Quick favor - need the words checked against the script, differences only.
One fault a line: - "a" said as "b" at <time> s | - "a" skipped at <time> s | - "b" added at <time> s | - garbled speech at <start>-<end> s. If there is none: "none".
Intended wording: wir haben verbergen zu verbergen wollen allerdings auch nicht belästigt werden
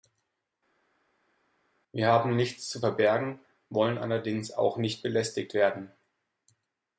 - "verbergen" said as "nichts" at 2.3 s